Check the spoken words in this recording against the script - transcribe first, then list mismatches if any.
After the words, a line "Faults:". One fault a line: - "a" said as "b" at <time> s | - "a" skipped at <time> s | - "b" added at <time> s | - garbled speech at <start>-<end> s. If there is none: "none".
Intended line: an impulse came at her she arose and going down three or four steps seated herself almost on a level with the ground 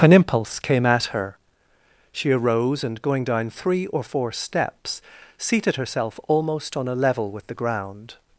an impulse came at her she arose and going down three or four steps seated herself almost on a level with the ground
Faults:
none